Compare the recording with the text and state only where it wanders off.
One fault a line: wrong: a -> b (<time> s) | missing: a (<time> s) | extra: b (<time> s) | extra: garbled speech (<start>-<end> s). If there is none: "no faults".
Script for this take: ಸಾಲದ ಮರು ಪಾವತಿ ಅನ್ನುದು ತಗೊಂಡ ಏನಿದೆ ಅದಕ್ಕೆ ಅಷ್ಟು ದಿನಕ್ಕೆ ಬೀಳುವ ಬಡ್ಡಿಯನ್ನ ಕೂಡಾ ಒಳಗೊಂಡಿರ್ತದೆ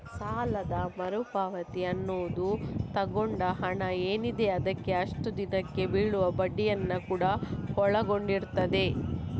extra: ಹಣ (3.6 s)